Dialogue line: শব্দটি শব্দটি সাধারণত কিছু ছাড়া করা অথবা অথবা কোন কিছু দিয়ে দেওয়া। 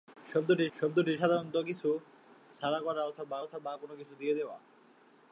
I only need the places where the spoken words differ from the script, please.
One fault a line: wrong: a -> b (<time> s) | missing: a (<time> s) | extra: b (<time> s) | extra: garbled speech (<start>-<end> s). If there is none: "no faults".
no faults